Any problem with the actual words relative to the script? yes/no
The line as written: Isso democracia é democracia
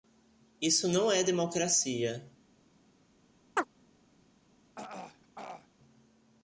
yes